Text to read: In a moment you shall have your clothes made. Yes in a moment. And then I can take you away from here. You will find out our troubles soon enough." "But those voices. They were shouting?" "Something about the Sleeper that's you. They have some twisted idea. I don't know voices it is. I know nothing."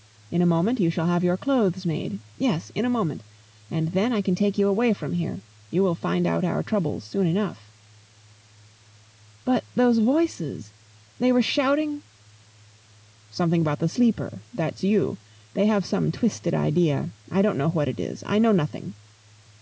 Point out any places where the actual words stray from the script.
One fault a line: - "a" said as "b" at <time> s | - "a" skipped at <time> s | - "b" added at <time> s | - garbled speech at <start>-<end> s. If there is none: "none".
- "voices" said as "what" at 17.7 s